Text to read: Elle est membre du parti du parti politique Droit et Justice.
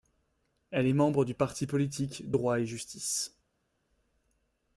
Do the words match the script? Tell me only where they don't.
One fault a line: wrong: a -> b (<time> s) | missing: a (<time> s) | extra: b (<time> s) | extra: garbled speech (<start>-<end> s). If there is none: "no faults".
missing: du parti (1.7 s)